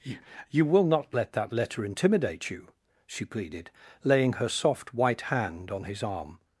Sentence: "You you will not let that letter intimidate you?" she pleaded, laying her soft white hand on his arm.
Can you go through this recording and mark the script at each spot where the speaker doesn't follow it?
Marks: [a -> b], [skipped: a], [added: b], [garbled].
"You you will not let that letter intimidate you?" she pleaded, laying her soft white hand on his arm.